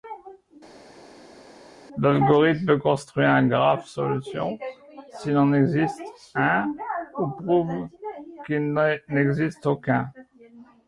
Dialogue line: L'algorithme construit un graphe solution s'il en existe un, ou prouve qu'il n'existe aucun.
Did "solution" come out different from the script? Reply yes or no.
no